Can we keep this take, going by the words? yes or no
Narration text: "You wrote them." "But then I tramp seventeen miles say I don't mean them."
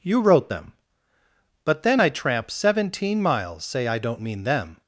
yes